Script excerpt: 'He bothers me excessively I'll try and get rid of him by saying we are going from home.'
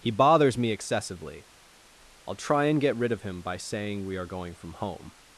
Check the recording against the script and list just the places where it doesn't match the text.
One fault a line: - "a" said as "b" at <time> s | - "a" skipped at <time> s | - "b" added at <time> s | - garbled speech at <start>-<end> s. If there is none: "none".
none